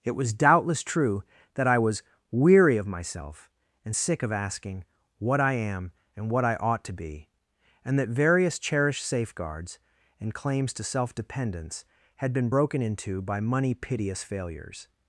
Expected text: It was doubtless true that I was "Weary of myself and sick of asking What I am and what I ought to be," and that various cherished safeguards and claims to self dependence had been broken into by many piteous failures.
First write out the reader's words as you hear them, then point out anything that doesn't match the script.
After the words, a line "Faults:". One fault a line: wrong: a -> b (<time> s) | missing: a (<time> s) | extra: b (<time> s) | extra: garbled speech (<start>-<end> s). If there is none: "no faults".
It was doubtless true that I was "Weary of myself and sick of asking What I am and what I ought to be," and that various cherished safeguards and claims to self dependence had been broken into by money piteous failures.
Faults:
wrong: many -> money (13.4 s)